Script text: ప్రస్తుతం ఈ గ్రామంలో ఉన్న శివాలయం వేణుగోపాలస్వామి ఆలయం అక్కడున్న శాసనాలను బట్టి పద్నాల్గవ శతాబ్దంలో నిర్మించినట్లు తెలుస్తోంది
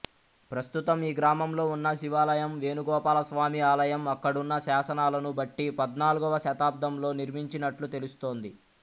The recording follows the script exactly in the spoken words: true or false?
true